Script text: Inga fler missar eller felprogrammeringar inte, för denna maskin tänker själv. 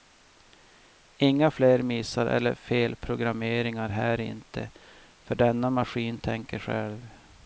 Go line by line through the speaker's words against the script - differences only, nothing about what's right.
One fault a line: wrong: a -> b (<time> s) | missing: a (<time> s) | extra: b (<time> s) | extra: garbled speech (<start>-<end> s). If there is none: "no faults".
extra: här (3.9 s)